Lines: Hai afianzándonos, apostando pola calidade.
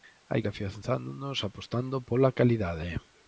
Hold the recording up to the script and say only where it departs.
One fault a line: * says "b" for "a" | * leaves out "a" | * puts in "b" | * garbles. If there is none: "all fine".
all fine